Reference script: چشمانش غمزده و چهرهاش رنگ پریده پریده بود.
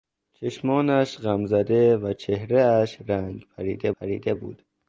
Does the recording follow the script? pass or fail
pass